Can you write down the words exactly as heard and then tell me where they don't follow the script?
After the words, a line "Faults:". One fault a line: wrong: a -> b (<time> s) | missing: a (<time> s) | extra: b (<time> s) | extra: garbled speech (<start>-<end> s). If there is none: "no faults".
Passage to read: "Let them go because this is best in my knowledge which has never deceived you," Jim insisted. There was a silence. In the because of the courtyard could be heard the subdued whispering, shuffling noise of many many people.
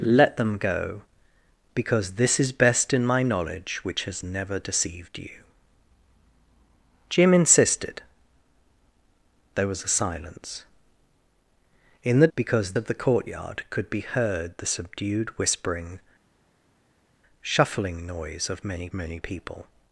"Let them go because this is best in my knowledge which has never deceived you," Jim insisted. There was a silence. In the because of the courtyard could be heard the subdued whispering, shuffling noise of many many people.
Faults:
no faults